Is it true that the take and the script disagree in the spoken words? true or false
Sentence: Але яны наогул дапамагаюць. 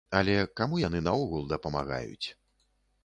true